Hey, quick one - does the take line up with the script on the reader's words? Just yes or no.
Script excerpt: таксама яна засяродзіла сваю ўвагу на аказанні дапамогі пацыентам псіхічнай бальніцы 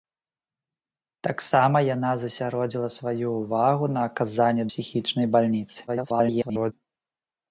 no